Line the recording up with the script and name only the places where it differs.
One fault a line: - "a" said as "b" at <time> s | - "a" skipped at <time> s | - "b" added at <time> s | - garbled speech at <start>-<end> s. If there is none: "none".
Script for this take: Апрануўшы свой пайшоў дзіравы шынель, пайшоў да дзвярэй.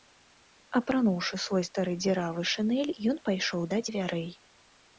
- "пайшоў" said as "стары" at 1.7 s
- "ён" added at 3.1 s